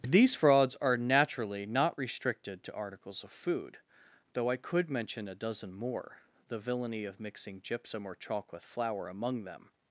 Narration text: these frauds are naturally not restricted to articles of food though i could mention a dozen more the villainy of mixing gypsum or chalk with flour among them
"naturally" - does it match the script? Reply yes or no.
yes